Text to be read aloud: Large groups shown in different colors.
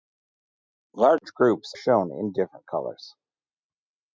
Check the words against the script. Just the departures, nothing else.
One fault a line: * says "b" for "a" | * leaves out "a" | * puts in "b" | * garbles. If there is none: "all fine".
all fine